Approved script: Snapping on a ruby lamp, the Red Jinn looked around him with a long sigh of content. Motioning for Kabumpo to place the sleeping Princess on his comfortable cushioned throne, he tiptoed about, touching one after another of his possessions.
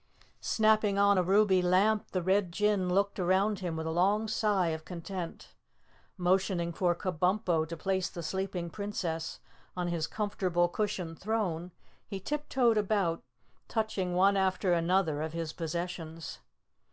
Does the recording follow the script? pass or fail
pass